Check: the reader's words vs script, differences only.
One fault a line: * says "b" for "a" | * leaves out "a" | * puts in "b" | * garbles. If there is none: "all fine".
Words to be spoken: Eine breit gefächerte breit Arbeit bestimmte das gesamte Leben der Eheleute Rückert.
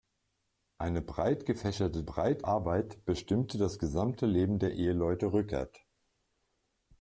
all fine